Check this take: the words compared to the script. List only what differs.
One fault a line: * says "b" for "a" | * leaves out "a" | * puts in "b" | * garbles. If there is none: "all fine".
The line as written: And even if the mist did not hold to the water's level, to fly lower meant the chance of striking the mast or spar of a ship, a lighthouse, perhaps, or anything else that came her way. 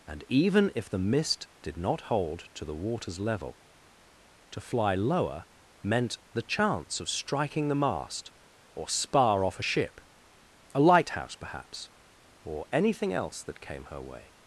* says "off" for "of"